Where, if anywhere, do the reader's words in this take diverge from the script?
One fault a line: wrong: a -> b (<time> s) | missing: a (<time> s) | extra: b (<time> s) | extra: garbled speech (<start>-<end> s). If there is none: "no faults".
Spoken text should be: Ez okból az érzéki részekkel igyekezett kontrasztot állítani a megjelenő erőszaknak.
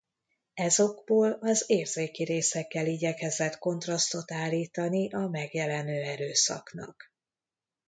no faults